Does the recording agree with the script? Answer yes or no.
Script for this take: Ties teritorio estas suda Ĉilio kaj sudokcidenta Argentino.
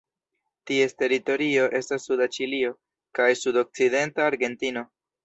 yes